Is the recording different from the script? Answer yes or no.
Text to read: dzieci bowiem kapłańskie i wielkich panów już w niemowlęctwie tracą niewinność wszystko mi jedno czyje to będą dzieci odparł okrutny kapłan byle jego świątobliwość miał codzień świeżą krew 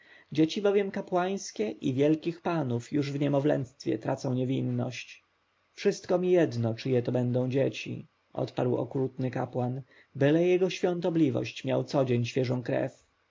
no